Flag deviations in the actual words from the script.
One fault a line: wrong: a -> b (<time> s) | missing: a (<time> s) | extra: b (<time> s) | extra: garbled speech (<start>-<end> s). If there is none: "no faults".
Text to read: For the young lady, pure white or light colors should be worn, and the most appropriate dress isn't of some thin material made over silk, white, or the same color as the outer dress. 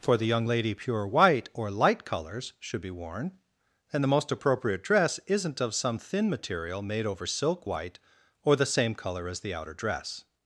no faults